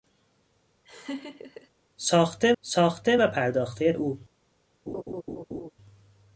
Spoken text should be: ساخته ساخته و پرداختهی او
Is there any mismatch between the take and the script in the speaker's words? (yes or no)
no